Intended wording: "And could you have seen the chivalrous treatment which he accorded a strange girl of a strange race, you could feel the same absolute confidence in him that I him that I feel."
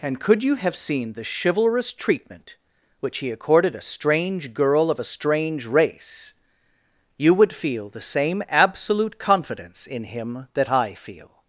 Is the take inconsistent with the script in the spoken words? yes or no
yes